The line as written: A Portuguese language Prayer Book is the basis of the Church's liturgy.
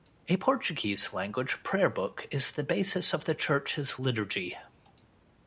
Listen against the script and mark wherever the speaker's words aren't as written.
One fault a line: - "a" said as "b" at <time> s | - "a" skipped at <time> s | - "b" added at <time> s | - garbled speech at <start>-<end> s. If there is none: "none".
none